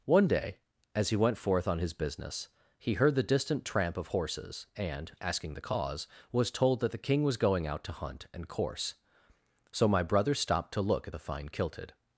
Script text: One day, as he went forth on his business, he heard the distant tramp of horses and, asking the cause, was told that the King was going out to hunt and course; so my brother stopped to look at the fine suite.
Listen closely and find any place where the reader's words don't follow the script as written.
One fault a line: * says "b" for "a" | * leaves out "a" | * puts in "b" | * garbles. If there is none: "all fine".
* says "kilted" for "suite"